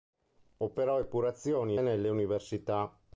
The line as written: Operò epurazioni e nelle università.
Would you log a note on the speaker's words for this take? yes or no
no